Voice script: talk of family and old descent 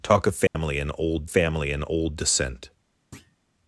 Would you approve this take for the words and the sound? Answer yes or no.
no